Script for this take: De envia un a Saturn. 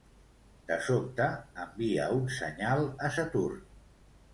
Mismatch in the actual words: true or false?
true